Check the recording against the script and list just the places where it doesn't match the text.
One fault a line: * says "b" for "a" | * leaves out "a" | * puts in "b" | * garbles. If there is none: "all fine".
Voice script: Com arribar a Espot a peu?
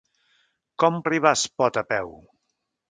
all fine